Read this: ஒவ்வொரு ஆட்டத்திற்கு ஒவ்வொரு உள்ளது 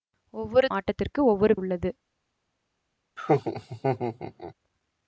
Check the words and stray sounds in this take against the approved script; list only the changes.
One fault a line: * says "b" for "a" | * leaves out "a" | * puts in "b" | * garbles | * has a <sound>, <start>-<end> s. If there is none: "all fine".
* has a laugh, 3.2-4.5 s